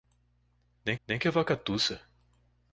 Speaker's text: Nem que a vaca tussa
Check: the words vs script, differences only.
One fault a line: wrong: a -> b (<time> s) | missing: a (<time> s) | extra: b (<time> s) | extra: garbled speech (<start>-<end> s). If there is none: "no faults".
extra: nem (1.1 s)